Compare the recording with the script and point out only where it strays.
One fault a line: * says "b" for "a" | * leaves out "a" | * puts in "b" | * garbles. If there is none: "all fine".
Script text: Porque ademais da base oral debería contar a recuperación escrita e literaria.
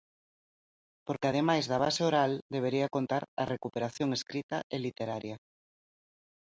all fine